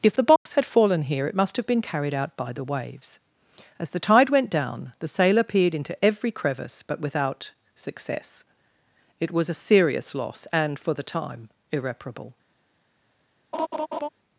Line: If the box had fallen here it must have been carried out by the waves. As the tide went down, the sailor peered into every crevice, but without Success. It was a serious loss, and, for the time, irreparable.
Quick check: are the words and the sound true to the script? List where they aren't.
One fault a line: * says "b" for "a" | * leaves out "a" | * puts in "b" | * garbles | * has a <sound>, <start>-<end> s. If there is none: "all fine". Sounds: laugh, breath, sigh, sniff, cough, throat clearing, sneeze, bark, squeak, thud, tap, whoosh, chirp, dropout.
* has a dropout, 0.4-0.5 s
* has a laugh, 13.5-14.1 s